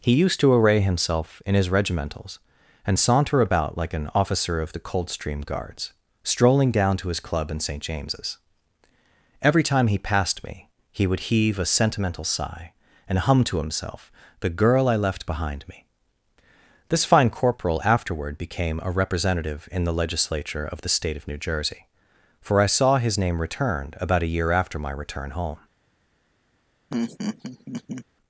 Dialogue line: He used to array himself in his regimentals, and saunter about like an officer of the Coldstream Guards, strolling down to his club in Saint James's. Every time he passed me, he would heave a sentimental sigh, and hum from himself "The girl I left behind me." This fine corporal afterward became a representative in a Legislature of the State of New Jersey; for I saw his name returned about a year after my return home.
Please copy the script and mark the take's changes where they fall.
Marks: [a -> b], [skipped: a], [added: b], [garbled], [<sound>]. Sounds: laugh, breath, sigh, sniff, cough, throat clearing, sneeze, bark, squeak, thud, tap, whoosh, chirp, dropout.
He used to array himself in his regimentals, and saunter about like an officer of the Coldstream Guards, strolling down to his club in Saint James's. Every time he passed me, he would heave a sentimental sigh, and hum [from -> to] himself "The girl I left behind me." This fine corporal afterward became a representative in [a -> the] Legislature of the State of New Jersey; for I saw his name returned about a year after my return home. [laugh]